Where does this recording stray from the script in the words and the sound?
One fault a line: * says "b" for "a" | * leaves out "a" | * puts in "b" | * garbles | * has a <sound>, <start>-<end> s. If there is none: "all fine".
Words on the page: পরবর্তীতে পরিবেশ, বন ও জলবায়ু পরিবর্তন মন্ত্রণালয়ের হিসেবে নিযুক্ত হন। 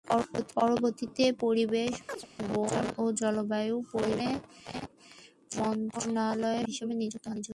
* has a chirp, 2.1-2.3 s